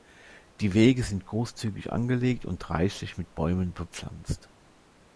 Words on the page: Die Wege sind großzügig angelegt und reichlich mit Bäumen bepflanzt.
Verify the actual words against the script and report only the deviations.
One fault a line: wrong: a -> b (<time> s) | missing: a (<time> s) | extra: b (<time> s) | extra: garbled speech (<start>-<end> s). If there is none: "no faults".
no faults